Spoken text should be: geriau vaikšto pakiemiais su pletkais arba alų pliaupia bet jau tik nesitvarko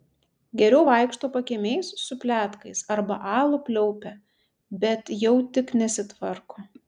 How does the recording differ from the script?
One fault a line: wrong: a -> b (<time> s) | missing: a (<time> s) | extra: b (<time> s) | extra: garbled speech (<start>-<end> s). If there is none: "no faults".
no faults